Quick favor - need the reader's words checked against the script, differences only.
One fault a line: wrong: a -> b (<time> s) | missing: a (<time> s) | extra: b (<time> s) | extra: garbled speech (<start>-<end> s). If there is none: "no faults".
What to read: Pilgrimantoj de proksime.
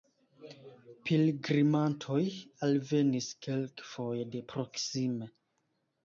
extra: alvenis kelkfoje (2.7 s)